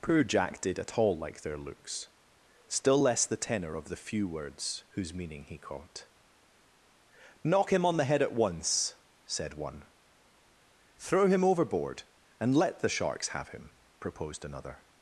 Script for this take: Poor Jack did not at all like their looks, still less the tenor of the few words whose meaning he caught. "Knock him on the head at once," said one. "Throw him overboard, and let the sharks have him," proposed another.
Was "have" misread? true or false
false